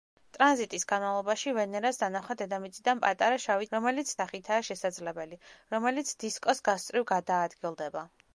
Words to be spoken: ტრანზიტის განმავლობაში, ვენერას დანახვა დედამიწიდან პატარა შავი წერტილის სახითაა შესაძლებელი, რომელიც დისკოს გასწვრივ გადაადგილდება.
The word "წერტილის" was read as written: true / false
false